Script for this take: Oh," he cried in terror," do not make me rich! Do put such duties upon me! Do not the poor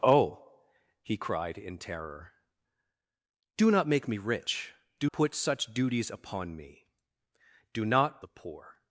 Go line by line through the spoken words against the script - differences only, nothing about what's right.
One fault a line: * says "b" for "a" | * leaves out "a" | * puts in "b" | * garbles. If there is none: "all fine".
all fine